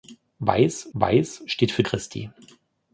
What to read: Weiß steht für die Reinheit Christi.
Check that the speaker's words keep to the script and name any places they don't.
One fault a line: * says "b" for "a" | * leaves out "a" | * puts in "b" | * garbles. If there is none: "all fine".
* puts in "weiß"
* leaves out "die Reinheit"